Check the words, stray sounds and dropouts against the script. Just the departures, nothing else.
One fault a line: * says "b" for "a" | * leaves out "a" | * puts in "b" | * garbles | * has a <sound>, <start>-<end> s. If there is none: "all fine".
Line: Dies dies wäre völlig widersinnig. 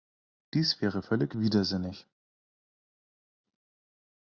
* leaves out "dies"